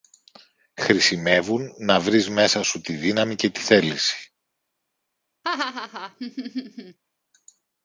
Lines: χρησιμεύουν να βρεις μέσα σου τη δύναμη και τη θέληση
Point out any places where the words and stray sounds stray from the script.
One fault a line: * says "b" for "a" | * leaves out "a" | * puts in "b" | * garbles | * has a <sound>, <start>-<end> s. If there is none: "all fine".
* has a laugh, 5.4-7.0 s